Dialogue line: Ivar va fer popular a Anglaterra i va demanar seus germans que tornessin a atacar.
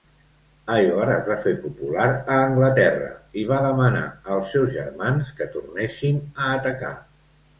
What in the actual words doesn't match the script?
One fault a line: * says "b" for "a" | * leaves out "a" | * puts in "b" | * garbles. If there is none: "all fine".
* puts in "es"
* puts in "als"